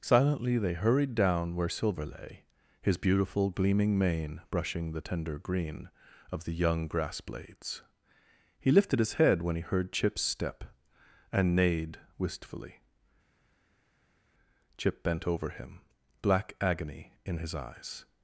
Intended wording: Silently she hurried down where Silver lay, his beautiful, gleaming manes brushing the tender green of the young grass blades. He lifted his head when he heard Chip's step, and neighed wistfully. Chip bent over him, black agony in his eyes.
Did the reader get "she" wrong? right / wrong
wrong